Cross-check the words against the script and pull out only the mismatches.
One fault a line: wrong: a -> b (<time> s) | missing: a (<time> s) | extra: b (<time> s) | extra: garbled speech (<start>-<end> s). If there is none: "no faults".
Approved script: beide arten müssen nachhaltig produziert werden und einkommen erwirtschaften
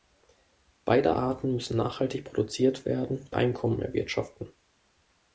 missing: und (3.3 s)